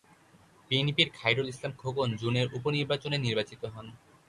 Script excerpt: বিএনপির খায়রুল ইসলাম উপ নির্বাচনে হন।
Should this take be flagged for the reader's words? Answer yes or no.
yes